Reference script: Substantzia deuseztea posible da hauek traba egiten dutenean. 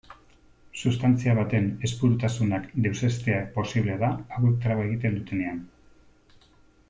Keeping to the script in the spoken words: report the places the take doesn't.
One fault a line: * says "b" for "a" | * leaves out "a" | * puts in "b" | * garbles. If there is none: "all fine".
* puts in "baten ezpurutasunak"